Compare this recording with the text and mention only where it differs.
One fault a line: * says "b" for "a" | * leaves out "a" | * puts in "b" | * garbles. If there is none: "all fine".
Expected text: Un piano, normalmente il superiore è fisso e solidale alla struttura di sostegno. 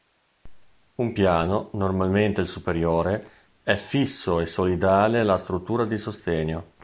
all fine